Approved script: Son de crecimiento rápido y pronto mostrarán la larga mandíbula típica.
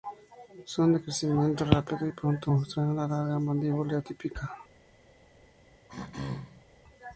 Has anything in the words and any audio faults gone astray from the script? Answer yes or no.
yes